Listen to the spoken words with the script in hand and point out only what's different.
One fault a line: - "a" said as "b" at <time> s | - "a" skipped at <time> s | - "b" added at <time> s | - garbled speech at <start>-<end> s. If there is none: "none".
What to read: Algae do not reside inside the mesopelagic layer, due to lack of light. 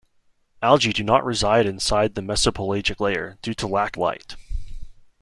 - "of" skipped at 4.0 s